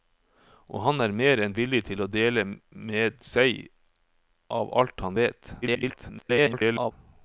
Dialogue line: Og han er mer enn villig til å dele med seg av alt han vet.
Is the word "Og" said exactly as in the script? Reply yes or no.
yes